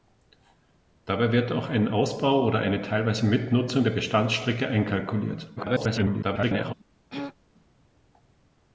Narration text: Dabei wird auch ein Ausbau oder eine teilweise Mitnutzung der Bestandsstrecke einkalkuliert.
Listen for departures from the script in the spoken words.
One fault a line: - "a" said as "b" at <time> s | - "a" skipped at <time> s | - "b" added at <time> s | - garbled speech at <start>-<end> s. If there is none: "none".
- garbled speech at 5.6-6.7 s